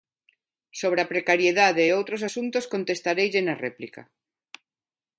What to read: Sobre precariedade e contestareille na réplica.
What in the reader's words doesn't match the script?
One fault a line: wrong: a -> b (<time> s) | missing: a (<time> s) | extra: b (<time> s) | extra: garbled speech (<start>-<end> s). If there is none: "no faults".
extra: a (1.0 s)
extra: outros asuntos (2.0 s)